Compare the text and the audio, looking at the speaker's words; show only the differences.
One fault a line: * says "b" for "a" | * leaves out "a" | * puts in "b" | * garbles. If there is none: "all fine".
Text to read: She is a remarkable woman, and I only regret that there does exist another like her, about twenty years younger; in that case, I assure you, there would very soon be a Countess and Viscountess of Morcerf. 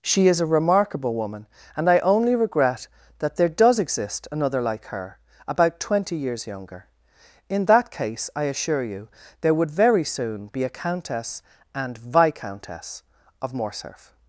all fine